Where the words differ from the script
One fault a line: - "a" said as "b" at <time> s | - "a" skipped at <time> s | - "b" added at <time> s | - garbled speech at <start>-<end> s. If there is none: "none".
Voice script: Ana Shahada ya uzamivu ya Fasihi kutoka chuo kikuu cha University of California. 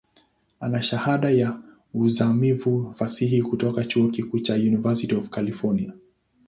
- "ya" skipped at 2.9 s